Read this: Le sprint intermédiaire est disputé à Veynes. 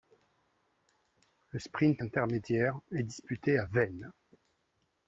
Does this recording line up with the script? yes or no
yes